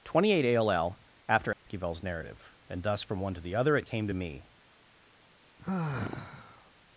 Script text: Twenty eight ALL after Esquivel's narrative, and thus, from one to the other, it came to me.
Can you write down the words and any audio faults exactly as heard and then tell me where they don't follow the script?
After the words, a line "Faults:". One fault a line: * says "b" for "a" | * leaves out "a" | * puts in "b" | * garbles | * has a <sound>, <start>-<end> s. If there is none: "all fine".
Twenty eight ALL after Esquivel's narrative, and thus, from one to the other, it came to me.
Faults:
* has a dropout, 1.5-1.7 s
* has a sigh, 5.6-6.7 s